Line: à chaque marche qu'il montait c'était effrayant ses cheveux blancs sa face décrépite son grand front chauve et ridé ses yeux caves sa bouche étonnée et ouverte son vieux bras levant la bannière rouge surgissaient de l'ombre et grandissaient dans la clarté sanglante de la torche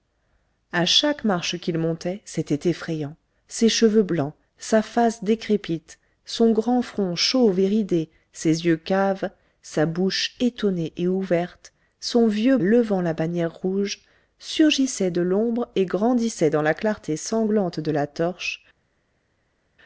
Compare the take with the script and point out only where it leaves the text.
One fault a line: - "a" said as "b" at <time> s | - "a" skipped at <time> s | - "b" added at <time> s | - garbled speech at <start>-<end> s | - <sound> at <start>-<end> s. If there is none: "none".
- "bras" skipped at 12.6 s